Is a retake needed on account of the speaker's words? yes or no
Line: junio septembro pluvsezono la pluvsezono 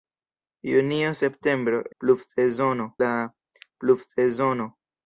no